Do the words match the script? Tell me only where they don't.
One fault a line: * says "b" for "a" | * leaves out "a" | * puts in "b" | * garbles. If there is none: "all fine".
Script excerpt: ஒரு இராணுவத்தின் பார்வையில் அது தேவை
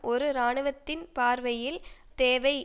* leaves out "அது"